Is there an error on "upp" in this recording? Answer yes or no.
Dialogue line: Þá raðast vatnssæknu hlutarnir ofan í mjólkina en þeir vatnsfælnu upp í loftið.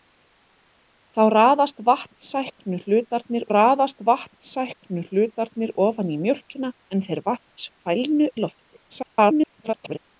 yes